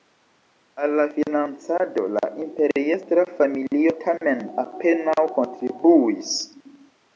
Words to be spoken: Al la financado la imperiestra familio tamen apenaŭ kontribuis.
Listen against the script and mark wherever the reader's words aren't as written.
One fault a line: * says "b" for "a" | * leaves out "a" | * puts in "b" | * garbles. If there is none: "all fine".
all fine